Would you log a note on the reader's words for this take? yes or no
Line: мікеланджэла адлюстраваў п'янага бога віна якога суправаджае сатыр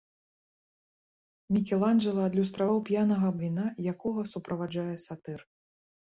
yes